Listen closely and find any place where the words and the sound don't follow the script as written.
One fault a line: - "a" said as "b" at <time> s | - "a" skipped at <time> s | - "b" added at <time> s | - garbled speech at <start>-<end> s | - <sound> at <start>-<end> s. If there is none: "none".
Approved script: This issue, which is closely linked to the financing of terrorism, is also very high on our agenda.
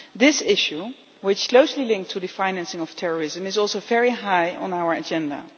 - "is" skipped at 1.5 s